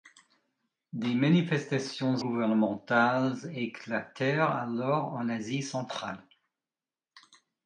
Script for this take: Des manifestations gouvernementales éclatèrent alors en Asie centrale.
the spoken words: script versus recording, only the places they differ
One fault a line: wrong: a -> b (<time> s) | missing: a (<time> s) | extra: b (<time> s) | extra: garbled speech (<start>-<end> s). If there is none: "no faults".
no faults